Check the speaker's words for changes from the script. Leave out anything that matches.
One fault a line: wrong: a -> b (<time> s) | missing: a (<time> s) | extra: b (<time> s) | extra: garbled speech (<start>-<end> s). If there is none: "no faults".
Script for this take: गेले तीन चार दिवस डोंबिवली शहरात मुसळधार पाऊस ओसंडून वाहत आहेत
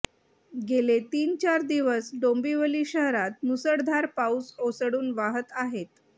no faults